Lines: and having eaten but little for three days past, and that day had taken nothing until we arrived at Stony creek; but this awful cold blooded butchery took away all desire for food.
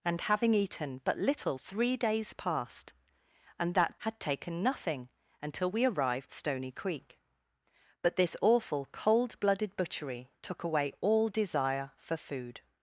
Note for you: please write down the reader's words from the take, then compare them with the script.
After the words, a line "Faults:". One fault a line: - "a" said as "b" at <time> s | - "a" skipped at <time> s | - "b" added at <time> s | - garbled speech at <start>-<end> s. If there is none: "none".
and having eaten but little three days past, and that had taken nothing until we arrived Stony creek; but this awful cold blooded butchery took away all desire for food.
Faults:
- "for" skipped at 1.6 s
- "day" skipped at 4.0 s
- "at" skipped at 6.3 s